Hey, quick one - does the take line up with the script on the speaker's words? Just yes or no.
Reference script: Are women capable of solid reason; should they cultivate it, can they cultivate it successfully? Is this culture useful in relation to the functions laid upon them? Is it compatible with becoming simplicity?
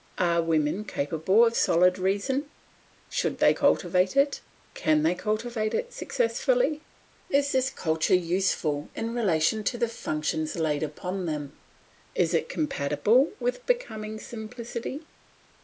yes